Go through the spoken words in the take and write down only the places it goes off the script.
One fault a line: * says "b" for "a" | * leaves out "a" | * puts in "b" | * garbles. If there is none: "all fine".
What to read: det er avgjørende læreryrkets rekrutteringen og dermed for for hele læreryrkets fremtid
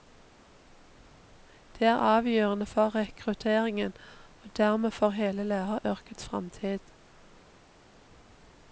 * says "for" for "læreryrkets"
* leaves out "for"